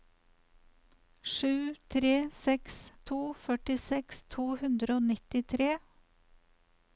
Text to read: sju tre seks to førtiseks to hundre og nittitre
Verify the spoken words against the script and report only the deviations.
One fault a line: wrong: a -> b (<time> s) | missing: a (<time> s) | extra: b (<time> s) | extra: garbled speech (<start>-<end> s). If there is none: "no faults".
no faults